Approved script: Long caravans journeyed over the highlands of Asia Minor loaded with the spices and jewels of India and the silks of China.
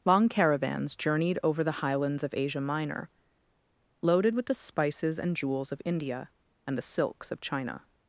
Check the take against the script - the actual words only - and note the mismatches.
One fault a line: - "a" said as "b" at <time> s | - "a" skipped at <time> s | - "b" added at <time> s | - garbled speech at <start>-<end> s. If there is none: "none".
none